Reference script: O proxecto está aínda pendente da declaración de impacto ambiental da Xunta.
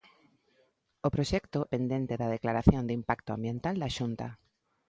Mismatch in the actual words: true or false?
true